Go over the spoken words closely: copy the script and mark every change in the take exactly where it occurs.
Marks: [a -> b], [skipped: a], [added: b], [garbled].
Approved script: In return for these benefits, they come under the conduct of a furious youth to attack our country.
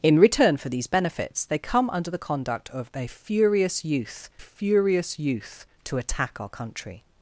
In return for these benefits, they come under the conduct of a furious youth [added: furious youth] to attack our country.